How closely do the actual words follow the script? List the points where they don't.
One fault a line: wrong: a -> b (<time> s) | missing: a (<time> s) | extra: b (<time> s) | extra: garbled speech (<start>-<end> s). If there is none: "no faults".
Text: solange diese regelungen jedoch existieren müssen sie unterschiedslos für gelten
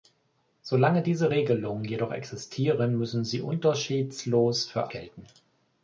no faults